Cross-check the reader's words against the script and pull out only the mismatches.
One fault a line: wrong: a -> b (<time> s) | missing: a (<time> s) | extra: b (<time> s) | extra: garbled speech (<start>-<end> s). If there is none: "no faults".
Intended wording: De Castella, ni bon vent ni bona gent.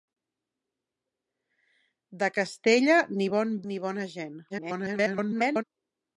missing: vent (3.5 s)
extra: garbled speech (4.5-5.6 s)